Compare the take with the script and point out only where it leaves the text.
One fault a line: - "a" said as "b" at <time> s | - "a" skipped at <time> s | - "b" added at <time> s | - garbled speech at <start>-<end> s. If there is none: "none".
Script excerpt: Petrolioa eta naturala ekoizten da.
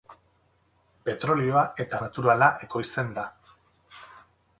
none